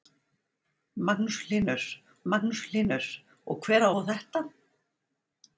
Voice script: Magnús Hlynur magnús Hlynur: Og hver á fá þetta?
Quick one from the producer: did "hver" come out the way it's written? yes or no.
yes